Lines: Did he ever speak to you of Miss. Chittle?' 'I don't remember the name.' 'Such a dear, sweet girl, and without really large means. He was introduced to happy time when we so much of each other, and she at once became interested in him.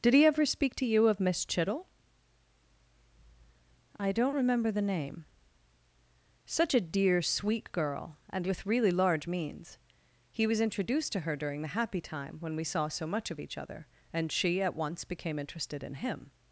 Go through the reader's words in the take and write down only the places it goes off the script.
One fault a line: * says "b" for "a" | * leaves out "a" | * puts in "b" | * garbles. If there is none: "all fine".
* says "with" for "without"
* puts in "her during the"
* puts in "saw"